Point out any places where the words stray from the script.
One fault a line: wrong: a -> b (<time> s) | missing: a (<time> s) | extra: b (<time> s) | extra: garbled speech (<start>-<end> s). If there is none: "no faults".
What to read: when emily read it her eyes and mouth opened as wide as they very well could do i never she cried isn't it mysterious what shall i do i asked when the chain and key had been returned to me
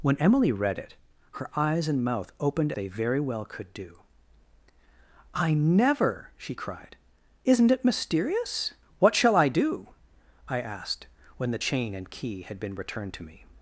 missing: as wide as (2.7 s)